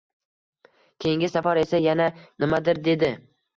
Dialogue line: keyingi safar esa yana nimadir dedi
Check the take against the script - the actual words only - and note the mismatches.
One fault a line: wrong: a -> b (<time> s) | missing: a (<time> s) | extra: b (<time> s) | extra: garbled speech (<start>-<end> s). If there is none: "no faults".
no faults